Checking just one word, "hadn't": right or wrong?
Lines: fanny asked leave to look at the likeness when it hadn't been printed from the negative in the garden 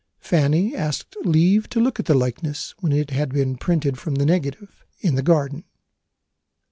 wrong